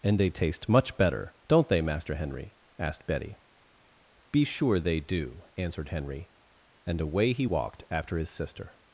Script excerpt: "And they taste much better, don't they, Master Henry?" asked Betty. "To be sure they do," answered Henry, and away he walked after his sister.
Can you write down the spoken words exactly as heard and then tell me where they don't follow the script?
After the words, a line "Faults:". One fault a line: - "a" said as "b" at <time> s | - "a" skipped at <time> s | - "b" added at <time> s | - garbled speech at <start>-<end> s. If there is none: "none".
"And they taste much better, don't they, Master Henry?" asked Betty. "be sure they do," answered Henry, and away he walked after his sister.
Faults:
- "To" skipped at 3.4 s